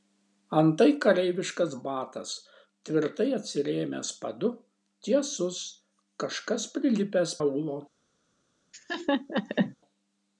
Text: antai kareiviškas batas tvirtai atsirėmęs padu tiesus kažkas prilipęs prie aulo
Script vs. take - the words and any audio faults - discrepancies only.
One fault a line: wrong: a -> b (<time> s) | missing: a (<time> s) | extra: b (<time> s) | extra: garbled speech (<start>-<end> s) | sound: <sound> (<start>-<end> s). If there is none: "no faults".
missing: prie (7.4 s)
sound: laugh (8.7-9.8 s)